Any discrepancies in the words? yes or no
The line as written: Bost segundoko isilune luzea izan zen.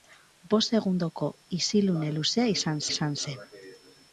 yes